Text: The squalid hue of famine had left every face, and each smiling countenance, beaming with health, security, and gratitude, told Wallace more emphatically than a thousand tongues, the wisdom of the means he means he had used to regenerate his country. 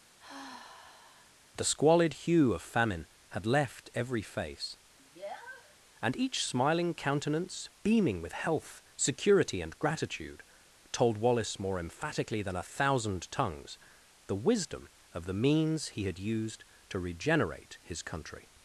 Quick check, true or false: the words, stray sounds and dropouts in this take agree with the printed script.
false